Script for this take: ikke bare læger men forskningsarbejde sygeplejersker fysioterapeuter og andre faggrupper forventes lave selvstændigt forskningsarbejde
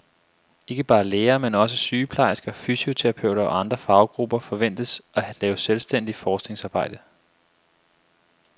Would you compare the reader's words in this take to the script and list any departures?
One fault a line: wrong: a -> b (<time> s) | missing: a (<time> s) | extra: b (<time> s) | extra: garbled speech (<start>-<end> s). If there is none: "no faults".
wrong: forskningsarbejde -> også (1.6 s)
extra: at (5.1 s)